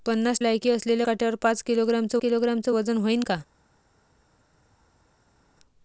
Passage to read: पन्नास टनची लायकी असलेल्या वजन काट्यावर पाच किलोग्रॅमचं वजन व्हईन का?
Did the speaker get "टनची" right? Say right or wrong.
wrong